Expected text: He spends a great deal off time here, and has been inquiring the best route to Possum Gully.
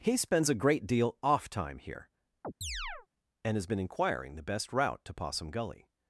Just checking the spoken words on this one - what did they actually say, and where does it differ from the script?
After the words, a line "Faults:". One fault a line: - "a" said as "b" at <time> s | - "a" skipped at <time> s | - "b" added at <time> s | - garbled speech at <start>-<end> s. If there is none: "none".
He spends a great deal off time here, and has been inquiring the best route to Possum Gully.
Faults:
none